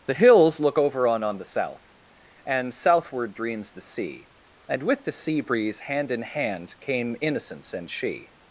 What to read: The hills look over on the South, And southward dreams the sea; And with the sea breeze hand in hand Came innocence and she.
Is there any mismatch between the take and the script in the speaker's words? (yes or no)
yes